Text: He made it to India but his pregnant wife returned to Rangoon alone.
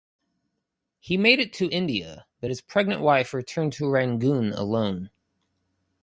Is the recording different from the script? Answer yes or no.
no